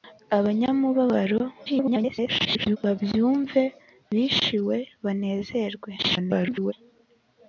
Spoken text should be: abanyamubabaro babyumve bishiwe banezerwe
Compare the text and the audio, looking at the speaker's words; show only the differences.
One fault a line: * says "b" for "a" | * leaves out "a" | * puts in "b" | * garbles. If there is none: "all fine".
* garbles
* garbles